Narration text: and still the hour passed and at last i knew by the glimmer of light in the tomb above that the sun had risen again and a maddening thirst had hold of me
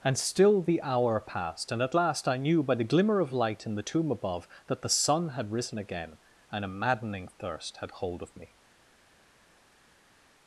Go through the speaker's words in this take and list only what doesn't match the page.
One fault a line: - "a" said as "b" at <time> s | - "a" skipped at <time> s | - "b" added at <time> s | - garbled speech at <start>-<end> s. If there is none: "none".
none